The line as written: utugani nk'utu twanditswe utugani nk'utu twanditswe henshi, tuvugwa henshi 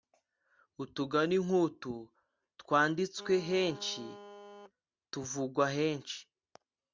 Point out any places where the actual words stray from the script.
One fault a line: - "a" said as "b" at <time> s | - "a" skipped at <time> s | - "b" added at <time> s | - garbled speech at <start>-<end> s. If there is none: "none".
- "utugani nk'utu twanditswe" skipped at 3.3 s